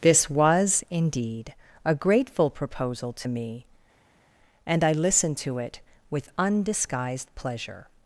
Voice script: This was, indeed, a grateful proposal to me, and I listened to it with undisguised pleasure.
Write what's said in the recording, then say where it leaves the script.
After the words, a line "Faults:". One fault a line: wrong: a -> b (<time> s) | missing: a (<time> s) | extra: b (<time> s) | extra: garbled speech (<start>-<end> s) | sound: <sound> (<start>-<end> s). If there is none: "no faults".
This was, indeed, a grateful proposal to me, and I listened to it with undisguised pleasure.
Faults:
no faults